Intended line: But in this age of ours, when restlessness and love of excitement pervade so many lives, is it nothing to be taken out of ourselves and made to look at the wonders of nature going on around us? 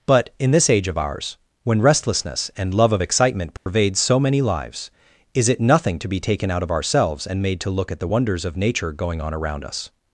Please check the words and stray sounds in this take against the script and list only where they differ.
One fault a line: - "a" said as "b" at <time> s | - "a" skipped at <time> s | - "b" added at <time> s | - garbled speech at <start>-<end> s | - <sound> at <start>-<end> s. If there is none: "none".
- dropout at 3.6-3.7 s